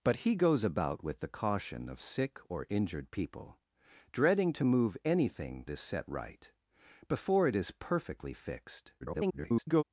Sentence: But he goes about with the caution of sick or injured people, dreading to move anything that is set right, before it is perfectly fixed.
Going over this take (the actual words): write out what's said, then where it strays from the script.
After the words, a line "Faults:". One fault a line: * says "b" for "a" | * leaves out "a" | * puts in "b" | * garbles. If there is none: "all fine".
But he goes about with the caution of sick or injured people, dreading to move anything is set right, before it is perfectly fixed. [garbled]
Faults:
* leaves out "that"
* garbles